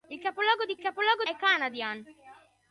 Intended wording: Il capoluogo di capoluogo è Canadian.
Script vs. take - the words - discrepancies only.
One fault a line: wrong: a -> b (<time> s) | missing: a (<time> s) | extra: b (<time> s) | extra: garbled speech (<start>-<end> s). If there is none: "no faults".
no faults